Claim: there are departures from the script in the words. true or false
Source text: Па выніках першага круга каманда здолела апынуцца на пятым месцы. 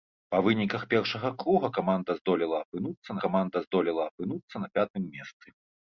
true